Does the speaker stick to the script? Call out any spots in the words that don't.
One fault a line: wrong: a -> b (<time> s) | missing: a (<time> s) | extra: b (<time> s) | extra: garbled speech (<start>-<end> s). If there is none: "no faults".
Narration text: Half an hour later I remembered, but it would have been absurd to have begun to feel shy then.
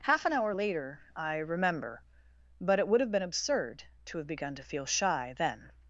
wrong: remembered -> remember (1.4 s)